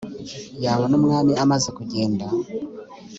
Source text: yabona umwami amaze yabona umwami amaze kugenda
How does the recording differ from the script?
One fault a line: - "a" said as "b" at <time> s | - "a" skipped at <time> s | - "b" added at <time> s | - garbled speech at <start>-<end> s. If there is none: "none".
- "yabona umwami amaze" skipped at 1.7 s